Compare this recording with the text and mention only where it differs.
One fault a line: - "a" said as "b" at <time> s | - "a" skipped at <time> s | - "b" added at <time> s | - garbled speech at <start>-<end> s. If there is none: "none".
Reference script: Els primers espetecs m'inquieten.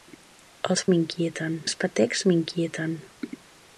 - "primers" said as "m'inquieten" at 0.9 s